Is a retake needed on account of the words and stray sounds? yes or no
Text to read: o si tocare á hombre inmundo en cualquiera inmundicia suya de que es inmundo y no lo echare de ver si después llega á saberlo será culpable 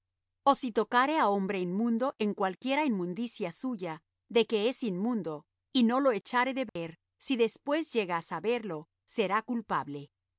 yes